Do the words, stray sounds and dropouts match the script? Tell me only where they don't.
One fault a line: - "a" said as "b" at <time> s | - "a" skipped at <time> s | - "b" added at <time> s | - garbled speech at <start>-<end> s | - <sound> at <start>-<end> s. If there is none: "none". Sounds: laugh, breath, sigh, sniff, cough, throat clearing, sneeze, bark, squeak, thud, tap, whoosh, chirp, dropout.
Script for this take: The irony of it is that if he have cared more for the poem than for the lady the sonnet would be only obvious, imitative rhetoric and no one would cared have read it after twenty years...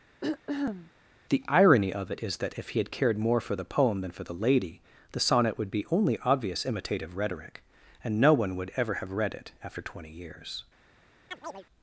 - throat clearing at 0.2-0.9 s
- "have" said as "had" at 2.8 s
- "cared" said as "ever" at 8.8 s
- chirp at 11.3-11.6 s